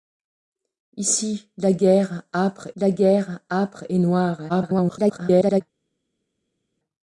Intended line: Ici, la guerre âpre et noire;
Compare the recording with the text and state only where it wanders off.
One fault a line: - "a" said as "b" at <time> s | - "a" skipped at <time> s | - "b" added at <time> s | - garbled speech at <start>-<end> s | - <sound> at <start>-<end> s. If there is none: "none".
- "la guerre âpre" added at 2.8 s
- garbled speech at 4.5-5.6 s